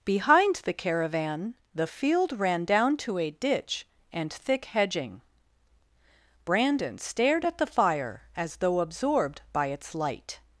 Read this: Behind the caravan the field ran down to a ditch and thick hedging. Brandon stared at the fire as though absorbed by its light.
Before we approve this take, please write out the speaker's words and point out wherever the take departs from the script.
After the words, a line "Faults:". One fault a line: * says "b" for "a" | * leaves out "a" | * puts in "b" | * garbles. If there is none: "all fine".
Behind the caravan the field ran down to a ditch and thick hedging. Brandon stared at the fire as though absorbed by its light.
Faults:
all fine